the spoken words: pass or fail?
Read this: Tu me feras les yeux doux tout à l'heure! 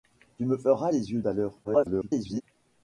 fail